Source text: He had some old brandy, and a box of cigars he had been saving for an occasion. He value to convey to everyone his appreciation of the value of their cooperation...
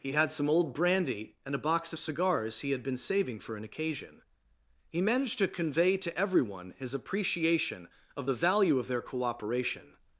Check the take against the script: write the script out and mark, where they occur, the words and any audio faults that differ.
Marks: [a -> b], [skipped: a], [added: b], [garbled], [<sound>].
He had some old brandy, and a box of cigars he had been saving for an occasion. He [value -> managed] to convey to everyone his appreciation of the value of their cooperation...